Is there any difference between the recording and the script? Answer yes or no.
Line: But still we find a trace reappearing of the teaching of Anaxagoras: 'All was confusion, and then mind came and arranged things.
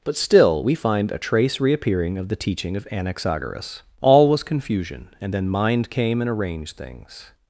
no